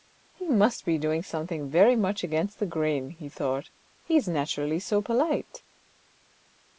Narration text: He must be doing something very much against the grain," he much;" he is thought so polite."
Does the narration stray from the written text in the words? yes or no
yes